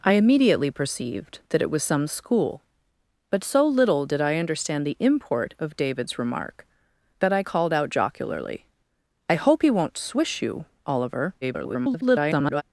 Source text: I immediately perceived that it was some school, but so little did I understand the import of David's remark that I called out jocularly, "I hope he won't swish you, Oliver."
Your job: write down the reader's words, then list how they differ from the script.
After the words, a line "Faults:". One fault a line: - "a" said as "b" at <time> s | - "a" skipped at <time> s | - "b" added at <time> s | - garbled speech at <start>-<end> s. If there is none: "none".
I immediately perceived that it was some school, but so little did I understand the import of David's remark that I called out jocularly, "I hope he won't swish you, Oliver." [garbled]
Faults:
- garbled speech at 11.4-12.6 s